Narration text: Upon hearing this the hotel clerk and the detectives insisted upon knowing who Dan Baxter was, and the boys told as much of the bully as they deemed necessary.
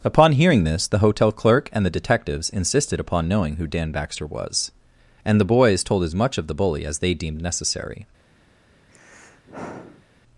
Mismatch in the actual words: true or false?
false